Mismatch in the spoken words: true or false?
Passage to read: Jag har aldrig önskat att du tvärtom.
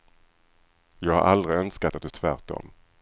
false